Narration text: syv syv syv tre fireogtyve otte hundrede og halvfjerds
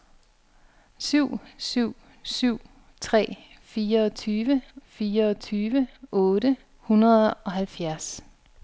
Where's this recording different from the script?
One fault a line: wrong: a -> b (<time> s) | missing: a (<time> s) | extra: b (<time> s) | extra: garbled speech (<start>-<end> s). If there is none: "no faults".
extra: fireogtyve (4.9 s)